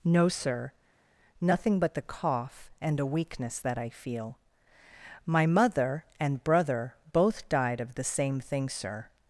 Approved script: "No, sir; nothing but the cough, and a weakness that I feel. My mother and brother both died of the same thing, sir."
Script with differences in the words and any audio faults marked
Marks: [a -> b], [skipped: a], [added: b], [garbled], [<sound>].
"No, sir; nothing but the cough, and a weakness that I feel. My mother and brother both died of the same thing, sir."